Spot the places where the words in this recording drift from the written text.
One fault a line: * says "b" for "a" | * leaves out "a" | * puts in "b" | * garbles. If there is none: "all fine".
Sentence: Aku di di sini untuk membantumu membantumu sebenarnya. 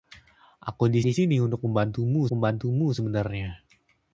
all fine